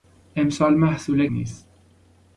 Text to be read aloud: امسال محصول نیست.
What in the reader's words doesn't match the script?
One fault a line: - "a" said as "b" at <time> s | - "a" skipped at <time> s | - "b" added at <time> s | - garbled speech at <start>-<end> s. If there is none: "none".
none